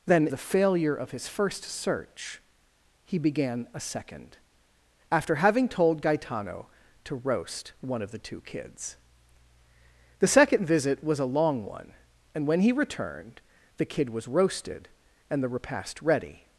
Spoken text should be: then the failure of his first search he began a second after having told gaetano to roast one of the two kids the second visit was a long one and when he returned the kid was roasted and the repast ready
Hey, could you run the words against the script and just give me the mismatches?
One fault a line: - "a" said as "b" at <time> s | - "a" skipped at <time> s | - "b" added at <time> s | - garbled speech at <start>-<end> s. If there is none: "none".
none